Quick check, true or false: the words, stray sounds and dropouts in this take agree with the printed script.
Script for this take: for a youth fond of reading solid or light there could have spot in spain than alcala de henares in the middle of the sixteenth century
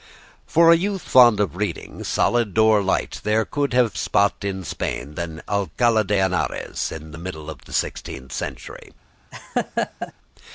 false